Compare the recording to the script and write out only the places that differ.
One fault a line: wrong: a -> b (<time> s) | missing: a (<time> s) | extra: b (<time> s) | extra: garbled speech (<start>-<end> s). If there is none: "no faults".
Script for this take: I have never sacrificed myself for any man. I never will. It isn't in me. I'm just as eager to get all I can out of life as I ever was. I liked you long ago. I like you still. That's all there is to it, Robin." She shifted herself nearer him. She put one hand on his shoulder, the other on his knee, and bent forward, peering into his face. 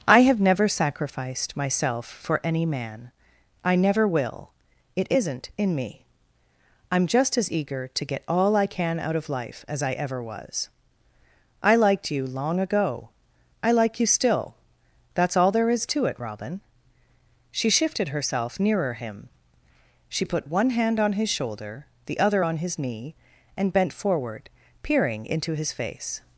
no faults